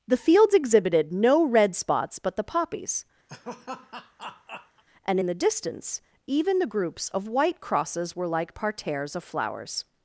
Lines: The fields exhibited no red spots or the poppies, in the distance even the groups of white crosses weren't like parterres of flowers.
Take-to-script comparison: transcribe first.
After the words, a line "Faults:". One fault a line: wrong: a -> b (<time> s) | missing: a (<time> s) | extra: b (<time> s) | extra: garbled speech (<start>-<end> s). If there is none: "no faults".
The fields exhibited no red spots but the poppies, and in the distance even the groups of white crosses were like parterres of flowers.
Faults:
wrong: or -> but (2.2 s)
extra: and (5.0 s)
wrong: weren't -> were (8.2 s)